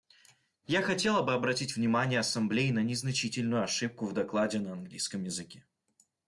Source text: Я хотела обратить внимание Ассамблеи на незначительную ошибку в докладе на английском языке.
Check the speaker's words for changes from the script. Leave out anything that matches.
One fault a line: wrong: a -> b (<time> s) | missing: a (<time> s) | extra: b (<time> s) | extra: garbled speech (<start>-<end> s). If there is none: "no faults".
extra: бы (1.2 s)